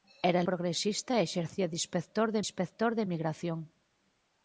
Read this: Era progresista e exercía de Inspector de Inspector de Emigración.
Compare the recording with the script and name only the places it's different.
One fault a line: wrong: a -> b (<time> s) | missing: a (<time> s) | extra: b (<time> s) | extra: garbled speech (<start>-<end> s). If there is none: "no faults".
no faults